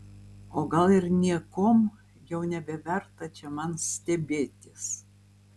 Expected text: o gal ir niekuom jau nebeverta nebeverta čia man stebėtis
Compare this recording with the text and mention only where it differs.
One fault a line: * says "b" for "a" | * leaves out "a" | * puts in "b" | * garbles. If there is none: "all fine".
* leaves out "nebeverta"